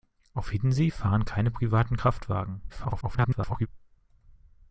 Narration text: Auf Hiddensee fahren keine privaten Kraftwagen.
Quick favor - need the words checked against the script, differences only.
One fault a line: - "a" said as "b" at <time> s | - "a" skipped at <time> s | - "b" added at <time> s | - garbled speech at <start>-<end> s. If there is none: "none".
- garbled speech at 2.7-3.7 s